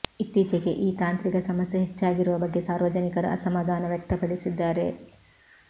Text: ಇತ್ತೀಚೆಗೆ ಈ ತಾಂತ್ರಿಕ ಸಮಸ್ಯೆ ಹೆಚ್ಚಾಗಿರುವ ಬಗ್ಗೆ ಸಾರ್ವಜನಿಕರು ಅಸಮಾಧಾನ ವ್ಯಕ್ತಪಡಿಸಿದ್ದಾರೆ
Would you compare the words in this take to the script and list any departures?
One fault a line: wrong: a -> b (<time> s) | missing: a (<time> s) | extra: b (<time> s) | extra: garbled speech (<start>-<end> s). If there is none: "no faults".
no faults